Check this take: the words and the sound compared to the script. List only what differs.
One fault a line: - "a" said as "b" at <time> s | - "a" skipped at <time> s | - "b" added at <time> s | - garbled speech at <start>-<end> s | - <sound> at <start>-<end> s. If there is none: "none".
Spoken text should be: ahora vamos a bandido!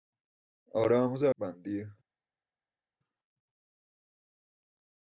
none